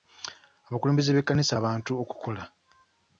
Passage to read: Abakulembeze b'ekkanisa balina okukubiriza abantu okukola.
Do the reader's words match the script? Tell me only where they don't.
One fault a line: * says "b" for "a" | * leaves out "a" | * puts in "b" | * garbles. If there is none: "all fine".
* leaves out "balina okukubiriza"